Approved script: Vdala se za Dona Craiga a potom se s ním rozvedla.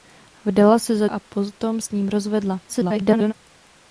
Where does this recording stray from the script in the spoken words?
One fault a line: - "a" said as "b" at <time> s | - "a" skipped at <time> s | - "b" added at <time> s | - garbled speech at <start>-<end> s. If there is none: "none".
- "Dona Craiga" skipped at 1.1 s
- "se" skipped at 1.8 s
- garbled speech at 2.7-3.3 s